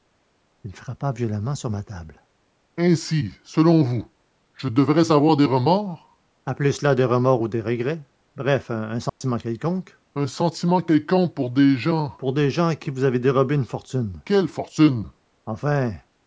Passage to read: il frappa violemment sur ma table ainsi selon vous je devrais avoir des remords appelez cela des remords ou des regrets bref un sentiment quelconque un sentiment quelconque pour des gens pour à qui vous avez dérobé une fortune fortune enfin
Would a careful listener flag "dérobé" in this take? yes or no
no